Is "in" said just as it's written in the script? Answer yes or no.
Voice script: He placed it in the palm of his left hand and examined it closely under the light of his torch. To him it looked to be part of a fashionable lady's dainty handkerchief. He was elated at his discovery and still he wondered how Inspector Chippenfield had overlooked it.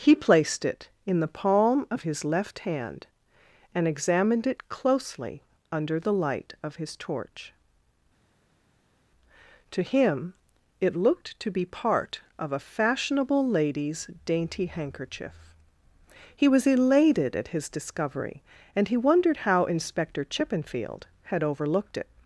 yes